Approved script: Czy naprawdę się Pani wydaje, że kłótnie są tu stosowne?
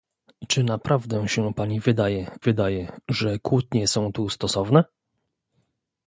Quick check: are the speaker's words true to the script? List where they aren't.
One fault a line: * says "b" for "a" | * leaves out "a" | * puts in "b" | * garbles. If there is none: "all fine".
* puts in "wydaje"